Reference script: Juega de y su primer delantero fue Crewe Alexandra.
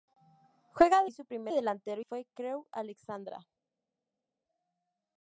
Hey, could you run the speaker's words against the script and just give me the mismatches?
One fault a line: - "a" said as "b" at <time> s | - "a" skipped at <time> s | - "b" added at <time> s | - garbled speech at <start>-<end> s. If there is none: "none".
none